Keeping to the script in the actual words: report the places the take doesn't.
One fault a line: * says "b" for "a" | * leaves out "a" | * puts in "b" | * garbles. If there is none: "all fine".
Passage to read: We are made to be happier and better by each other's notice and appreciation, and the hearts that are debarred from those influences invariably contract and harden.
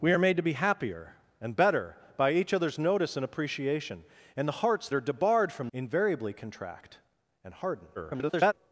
* leaves out "that"
* leaves out "those influences"
* garbles